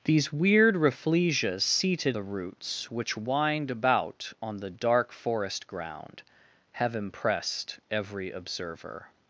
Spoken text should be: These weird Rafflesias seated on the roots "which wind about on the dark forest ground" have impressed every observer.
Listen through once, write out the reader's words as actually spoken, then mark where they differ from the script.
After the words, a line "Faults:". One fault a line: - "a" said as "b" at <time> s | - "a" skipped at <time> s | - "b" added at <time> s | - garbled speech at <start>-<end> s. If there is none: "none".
These weird Rafflesias seated the roots "which wind about on the dark forest ground" have impressed every observer.
Faults:
- "on" skipped at 2.2 s